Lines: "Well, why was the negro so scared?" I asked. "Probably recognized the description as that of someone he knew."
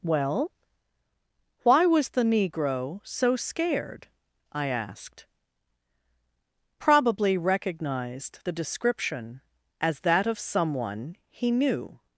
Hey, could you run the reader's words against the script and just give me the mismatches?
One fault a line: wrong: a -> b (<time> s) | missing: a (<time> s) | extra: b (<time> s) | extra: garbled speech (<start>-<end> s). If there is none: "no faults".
no faults